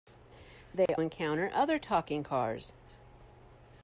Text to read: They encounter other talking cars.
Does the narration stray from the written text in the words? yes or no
no